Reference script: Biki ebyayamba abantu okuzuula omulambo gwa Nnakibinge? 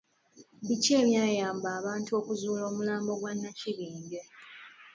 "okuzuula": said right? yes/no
yes